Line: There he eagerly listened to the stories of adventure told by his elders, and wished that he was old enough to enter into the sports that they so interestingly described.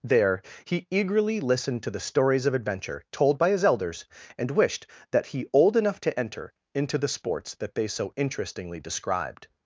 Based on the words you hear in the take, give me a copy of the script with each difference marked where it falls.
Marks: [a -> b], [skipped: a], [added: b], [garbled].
There he eagerly listened to the stories of adventure told by his elders, and wished that he [skipped: was] old enough to enter into the sports that they so interestingly described.